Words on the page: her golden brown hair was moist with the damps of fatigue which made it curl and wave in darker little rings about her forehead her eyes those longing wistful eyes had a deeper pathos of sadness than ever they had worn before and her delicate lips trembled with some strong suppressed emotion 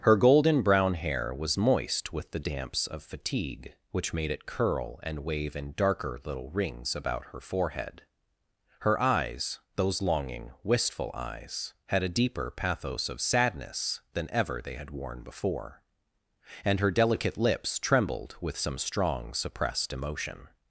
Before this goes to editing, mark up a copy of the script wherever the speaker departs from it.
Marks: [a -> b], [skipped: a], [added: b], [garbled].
her golden brown hair was moist with the damps of fatigue which made it curl and wave in darker little rings about her forehead her eyes those longing wistful eyes had a deeper pathos of sadness than ever they had worn before and her delicate lips trembled with some strong suppressed emotion